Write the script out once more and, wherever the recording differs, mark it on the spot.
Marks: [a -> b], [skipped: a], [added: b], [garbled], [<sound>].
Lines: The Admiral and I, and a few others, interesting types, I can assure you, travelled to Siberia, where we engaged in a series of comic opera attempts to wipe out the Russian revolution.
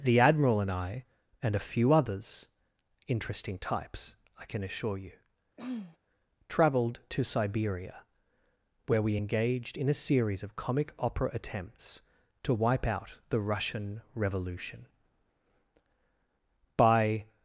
The Admiral and I, and a few others, interesting types, I can assure you, [throat clearing] travelled to Siberia, where we engaged in a series of comic opera attempts to wipe out the Russian revolution. [added: By]